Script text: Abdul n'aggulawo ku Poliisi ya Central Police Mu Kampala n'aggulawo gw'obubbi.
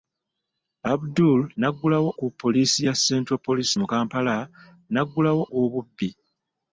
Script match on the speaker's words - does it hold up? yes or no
yes